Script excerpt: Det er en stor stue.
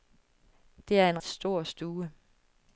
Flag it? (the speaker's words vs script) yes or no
no